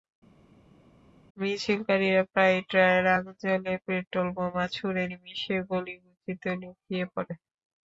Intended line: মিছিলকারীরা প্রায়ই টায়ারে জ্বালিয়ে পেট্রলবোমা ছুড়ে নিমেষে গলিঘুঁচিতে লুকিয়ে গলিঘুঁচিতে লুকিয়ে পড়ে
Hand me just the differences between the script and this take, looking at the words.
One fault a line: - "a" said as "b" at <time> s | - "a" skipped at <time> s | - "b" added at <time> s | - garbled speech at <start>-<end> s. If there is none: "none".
- "আগুন" added at 3.2 s
- "গলিঘুঁচিতে লুকিয়ে" skipped at 7.0 s